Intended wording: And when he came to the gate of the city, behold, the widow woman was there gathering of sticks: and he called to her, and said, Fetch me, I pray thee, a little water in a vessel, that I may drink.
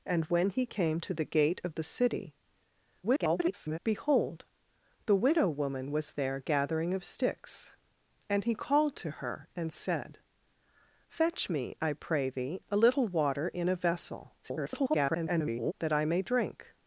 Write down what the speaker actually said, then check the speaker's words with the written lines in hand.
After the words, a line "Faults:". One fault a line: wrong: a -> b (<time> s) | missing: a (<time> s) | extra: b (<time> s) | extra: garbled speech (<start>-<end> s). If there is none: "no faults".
And when he came to the gate of the city, [garbled] behold, the widow woman was there gathering of sticks: and he called to her, and said, Fetch me, I pray thee, a little water in a vessel, [garbled] that I may drink.
Faults:
extra: garbled speech (3.0-3.8 s)
extra: garbled speech (14.4-15.7 s)